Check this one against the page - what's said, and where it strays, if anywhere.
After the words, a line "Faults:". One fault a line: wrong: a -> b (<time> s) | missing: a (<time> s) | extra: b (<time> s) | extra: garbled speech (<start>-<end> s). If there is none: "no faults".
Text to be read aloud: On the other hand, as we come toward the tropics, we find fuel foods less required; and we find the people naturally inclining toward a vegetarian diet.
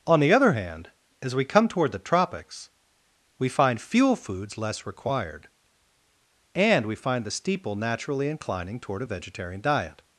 On the other hand, as we come toward the tropics, we find fuel foods less required; and we find the steeple naturally inclining toward a vegetarian diet.
Faults:
wrong: people -> steeple (7.3 s)